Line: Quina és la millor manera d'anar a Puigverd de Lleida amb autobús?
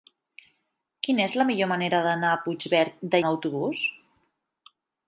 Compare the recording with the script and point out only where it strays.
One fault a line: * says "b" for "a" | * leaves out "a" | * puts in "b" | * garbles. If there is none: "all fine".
* leaves out "Lleida"